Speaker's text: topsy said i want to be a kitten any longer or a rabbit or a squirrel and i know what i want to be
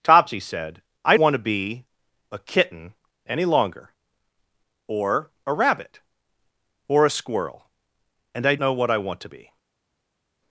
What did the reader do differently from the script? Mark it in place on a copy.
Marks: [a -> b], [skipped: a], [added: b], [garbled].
topsy said i want to be a kitten any longer or a rabbit or a squirrel and i know what i want to be